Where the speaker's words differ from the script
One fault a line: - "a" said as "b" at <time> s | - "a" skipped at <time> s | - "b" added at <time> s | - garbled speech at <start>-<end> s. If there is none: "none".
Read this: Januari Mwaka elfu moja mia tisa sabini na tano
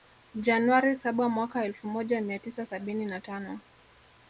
- "saba" added at 0.9 s